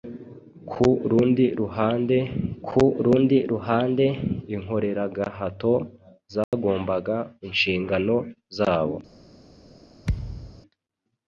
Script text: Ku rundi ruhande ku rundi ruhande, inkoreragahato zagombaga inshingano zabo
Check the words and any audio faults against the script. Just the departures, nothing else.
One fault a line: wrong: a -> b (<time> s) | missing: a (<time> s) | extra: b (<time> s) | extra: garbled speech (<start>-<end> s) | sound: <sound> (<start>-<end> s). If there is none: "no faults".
sound: dropout (6.4-6.5 s)
sound: thud (10.0-10.6 s)